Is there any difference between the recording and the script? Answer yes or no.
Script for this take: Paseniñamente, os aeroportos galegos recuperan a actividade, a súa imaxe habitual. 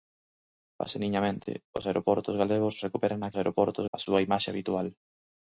yes